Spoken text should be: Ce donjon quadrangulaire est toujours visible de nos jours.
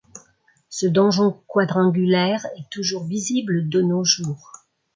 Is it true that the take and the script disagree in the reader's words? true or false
false